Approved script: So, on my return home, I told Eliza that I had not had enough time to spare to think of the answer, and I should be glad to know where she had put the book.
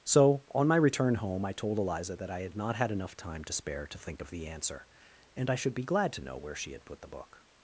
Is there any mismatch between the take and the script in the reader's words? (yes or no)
no